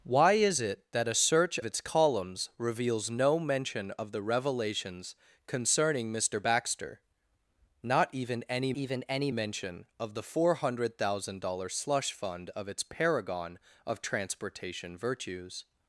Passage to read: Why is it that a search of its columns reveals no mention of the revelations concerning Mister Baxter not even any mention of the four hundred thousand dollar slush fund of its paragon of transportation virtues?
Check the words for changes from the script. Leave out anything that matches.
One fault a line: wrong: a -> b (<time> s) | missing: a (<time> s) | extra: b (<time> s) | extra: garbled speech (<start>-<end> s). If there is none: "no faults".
missing: of (1.6 s)
extra: even any (8.7 s)